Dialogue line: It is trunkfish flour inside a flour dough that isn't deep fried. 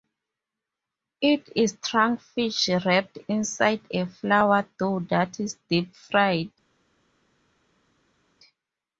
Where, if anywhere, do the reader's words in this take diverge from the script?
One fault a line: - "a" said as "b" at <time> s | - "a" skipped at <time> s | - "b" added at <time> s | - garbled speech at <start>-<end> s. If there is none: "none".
- "flour" said as "wrapped" at 2.8 s
- "isn't" said as "is" at 5.4 s